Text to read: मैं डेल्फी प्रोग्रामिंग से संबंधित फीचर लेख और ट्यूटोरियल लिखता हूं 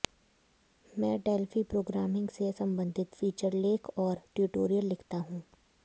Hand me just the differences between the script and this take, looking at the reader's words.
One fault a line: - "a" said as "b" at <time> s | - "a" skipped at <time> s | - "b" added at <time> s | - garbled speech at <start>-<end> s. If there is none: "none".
none